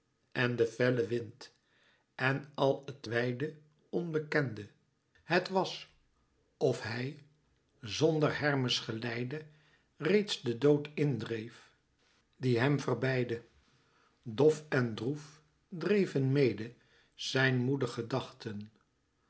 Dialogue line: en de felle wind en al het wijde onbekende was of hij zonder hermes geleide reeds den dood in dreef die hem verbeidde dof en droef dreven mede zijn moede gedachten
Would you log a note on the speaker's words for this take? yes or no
yes